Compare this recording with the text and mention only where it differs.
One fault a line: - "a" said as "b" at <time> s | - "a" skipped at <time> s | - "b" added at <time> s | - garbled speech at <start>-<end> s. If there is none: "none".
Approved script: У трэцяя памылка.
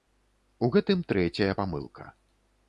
- "гэтым" added at 0.8 s